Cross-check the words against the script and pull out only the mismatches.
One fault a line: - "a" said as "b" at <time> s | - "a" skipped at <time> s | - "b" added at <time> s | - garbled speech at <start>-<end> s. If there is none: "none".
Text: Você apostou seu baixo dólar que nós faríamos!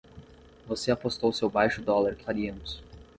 - "nós" skipped at 2.2 s